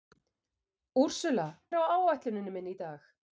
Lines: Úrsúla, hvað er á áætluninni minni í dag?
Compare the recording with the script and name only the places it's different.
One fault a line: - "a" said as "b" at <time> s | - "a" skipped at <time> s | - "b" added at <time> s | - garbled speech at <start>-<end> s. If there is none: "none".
- "hvað" skipped at 1.5 s